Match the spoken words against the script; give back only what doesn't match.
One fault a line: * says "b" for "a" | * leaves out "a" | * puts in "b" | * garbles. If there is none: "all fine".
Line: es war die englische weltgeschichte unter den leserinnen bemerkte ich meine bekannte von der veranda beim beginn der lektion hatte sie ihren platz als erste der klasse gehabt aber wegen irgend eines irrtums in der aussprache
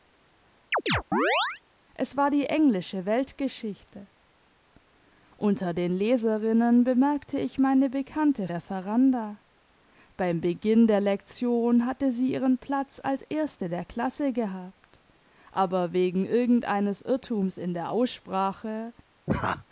* leaves out "von"